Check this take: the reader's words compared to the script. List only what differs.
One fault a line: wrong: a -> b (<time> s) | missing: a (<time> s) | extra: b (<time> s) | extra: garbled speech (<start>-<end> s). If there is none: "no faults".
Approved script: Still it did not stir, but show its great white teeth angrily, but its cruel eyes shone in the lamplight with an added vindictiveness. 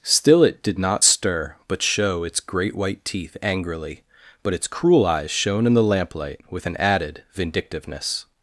no faults